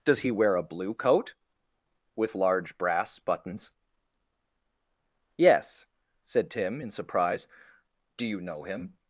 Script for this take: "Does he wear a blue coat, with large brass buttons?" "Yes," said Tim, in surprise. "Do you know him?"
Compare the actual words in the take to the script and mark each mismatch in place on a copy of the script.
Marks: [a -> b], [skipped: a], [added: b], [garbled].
"Does he wear a blue coat, with large brass buttons?" "Yes," said Tim, in surprise. "Do you know him?"